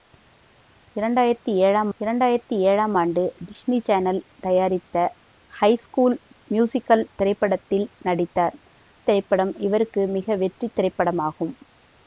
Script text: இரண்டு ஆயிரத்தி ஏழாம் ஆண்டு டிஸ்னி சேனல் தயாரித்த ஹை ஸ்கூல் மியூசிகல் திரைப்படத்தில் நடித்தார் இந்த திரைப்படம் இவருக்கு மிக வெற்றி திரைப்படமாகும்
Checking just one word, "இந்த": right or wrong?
wrong